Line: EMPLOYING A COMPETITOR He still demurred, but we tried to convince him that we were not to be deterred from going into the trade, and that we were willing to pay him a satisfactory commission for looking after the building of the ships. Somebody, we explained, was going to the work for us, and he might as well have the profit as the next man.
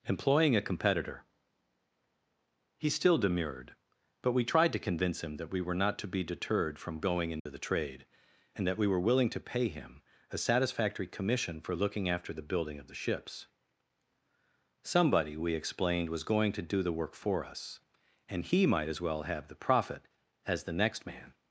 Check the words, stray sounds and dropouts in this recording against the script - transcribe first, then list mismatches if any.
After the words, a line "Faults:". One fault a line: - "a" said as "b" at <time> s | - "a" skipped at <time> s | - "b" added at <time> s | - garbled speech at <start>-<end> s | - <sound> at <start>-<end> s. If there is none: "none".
EMPLOYING A COMPETITOR He still demurred, but we tried to convince him that we were not to be deterred from going into the trade, and that we were willing to pay him a satisfactory commission for looking after the building of the ships. Somebody, we explained, was going to do the work for us, and he might as well have the profit as the next man.
Faults:
- dropout at 7.4-7.5 s
- "do" added at 16.6 s